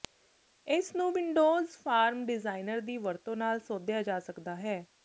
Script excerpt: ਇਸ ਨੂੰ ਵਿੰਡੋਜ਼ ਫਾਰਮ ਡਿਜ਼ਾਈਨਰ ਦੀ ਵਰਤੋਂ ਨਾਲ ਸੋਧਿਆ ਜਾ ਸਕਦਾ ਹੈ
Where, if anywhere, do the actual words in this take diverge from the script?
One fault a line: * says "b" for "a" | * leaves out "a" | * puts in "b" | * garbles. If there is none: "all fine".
all fine